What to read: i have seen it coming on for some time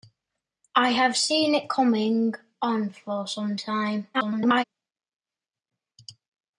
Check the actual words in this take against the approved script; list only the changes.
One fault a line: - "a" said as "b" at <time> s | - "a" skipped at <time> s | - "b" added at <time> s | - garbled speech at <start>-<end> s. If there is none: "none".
- garbled speech at 4.1-4.6 s